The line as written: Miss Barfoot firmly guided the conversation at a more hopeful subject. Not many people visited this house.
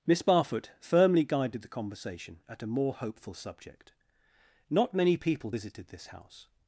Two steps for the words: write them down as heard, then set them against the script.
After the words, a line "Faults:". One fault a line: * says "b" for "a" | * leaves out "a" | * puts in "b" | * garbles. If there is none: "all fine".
Miss Barfoot firmly guided the conversation at a more hopeful subject. Not many people visited this house.
Faults:
all fine